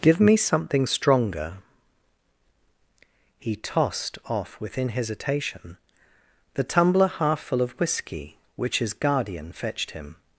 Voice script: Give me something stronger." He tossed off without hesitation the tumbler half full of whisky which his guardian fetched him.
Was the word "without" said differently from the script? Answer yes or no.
yes